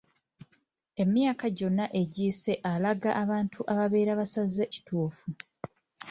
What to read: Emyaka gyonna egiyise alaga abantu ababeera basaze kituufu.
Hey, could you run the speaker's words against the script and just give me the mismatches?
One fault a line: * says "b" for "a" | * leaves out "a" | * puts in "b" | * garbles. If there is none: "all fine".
all fine